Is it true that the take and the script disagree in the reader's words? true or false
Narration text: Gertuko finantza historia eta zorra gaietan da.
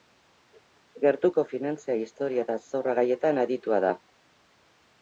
true